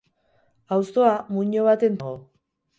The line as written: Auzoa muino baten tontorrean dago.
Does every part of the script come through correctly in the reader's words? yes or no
no